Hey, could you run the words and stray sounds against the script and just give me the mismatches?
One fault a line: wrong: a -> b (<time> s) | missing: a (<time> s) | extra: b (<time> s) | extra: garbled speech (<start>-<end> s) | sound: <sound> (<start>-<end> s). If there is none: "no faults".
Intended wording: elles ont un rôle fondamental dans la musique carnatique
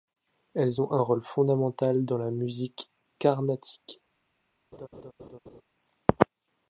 sound: laugh (4.7-5.6 s)